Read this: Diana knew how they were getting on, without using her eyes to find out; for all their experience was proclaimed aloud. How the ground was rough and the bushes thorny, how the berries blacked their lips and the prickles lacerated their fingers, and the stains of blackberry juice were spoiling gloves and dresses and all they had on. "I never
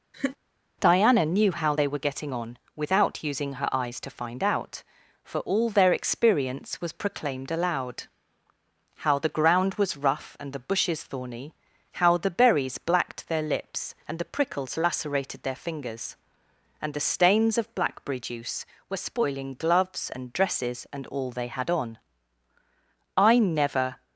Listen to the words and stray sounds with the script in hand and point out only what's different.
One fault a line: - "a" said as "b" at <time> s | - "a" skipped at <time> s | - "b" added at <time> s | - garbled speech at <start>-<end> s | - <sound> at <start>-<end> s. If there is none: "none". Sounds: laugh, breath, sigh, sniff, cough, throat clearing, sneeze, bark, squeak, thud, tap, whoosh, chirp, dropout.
- laugh at 0.1-0.4 s